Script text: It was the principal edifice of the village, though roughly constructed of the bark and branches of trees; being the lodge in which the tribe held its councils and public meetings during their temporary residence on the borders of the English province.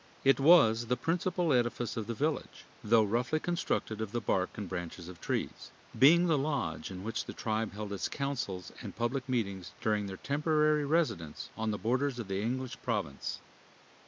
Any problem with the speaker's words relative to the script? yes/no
no